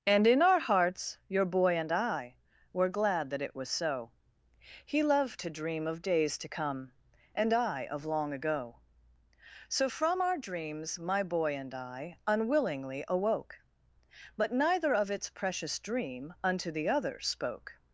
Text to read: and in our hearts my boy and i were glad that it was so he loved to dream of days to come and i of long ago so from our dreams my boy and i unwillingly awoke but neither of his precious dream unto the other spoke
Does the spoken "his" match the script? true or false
false